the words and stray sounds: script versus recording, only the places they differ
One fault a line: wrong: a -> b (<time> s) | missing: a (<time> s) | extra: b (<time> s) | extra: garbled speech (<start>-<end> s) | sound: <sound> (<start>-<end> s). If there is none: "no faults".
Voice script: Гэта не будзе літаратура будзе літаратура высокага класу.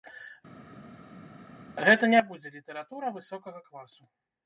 missing: будзе літаратура (3.1 s)